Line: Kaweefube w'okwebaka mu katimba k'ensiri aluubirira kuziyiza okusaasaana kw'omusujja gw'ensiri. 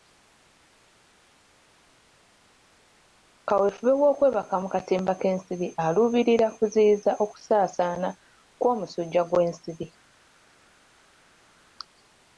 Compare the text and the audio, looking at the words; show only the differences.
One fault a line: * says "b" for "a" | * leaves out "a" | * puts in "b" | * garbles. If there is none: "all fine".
all fine